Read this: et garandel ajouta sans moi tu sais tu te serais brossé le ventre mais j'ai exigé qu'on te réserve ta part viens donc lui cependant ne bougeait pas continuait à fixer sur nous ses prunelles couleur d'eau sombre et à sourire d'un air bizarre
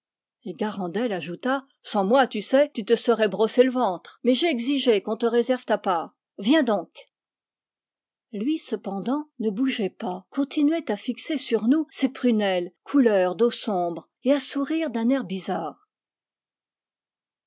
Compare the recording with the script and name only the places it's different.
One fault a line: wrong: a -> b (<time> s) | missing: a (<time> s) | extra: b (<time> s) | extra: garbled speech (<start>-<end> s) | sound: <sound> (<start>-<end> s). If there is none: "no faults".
no faults